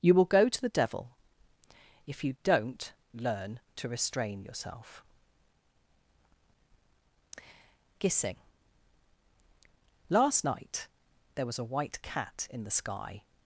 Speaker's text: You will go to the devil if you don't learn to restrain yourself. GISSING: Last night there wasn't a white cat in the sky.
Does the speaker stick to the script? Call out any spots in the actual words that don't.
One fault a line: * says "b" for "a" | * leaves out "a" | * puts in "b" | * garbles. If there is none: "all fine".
* says "was" for "wasn't"